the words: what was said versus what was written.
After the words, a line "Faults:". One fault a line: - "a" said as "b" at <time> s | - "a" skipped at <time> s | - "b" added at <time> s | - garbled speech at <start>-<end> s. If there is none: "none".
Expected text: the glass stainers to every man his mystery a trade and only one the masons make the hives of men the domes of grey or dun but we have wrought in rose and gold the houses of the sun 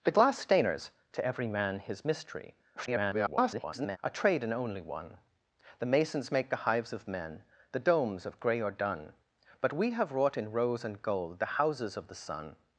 the glass stainers to every man his mystery [garbled] a trade and only one the masons make the hives of men the domes of grey or dun but we have wrought in rose and gold the houses of the sun
Faults:
- garbled speech at 2.8-4.0 s